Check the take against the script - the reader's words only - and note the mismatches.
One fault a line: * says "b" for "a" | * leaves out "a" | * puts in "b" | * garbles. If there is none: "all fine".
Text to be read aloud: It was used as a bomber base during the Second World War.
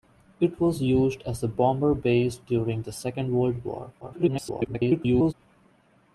* garbles